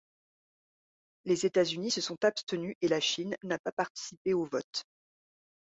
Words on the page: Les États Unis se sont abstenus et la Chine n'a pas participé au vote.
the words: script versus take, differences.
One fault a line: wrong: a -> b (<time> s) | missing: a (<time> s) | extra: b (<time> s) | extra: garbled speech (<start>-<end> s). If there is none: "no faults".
no faults